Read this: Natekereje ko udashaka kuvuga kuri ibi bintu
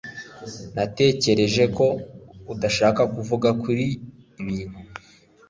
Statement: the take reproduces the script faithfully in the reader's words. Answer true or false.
false